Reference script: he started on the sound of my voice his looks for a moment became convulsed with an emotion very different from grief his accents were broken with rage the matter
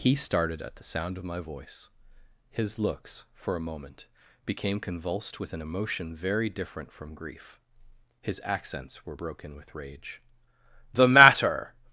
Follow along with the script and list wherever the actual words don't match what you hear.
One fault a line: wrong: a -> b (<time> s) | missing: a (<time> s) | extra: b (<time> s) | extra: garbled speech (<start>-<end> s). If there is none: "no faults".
wrong: on -> at (0.6 s)